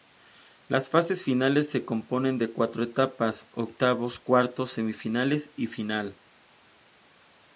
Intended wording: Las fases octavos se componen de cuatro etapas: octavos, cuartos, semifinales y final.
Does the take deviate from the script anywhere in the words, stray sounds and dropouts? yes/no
yes